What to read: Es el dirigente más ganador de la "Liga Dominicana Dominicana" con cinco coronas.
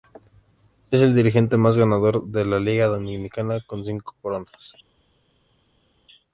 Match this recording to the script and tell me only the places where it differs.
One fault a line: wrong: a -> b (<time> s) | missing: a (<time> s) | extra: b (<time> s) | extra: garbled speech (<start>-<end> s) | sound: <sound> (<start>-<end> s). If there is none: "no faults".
missing: Dominicana (3.6 s)